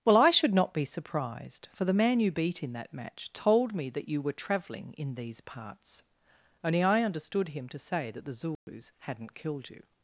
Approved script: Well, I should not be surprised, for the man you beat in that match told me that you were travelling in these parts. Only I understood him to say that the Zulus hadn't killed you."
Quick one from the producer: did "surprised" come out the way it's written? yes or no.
yes